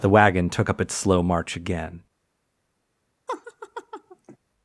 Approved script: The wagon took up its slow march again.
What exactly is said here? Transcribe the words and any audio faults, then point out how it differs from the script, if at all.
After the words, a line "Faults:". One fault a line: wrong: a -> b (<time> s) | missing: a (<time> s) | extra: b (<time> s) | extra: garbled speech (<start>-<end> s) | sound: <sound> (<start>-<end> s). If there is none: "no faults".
The wagon took up its slow march again.
Faults:
sound: laugh (3.3-4.4 s)